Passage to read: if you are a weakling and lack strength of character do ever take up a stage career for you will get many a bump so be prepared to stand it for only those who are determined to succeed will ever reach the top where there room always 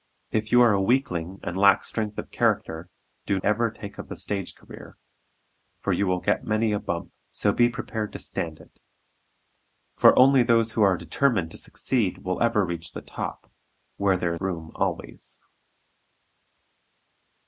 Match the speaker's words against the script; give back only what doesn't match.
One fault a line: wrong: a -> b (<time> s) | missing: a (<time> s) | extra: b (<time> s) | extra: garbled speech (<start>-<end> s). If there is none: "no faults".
no faults